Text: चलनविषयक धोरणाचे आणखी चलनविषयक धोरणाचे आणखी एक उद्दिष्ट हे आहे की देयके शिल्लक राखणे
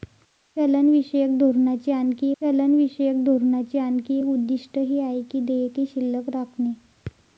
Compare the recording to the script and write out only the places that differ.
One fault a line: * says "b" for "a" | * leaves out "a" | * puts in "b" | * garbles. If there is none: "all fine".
all fine